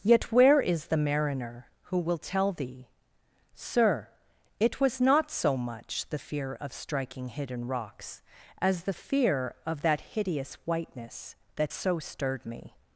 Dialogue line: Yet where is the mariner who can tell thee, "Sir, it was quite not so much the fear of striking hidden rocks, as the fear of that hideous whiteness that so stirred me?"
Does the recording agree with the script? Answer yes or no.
no